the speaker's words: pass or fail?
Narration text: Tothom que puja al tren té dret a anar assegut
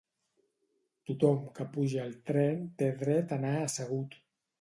pass